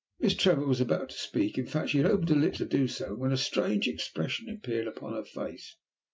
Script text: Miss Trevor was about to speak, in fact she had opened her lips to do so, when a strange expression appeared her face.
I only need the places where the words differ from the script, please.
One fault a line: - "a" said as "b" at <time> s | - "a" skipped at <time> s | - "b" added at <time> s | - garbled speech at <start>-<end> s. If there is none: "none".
- "upon" added at 4.9 s